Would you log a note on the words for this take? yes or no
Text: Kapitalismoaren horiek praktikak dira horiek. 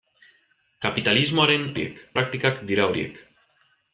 no